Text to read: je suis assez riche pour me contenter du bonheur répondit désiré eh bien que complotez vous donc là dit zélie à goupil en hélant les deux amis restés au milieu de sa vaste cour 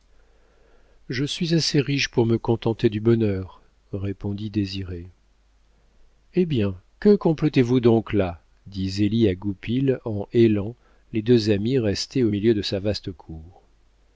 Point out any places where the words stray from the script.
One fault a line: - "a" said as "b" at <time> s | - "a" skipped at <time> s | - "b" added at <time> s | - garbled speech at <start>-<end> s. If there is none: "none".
none